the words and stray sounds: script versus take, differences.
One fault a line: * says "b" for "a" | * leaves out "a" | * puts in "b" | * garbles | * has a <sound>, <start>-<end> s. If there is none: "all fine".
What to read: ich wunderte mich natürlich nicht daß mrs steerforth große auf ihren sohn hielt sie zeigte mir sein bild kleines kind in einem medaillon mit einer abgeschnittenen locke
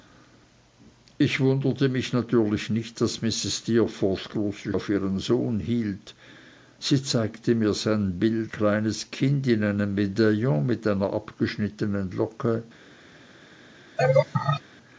* has a laugh, 14.0-14.6 s